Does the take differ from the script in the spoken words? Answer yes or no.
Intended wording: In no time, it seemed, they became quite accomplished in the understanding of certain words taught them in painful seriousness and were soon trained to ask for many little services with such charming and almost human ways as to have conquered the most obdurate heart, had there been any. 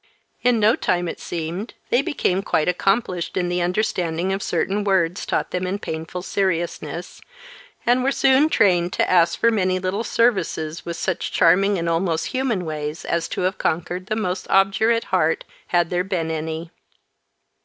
no